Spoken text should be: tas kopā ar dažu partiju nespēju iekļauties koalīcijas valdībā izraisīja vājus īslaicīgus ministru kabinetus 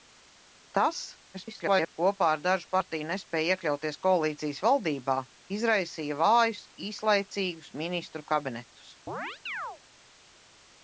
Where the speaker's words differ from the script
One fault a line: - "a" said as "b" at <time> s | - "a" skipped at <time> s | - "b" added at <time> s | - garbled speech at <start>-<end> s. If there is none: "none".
- garbled speech at 1.3-1.9 s